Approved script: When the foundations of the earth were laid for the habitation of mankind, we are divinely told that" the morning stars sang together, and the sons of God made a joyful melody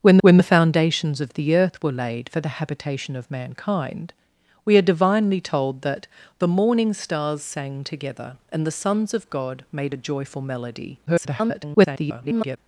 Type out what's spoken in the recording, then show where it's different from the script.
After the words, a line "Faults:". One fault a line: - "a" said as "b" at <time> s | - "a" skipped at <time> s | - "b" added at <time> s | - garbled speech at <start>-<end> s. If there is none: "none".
When when the foundations of the earth were laid for the habitation of mankind, we are divinely told that" the morning stars sang together, and the sons of God made a joyful melody [garbled]
Faults:
- "when" added at 0.2 s
- garbled speech at 11.1-12.6 s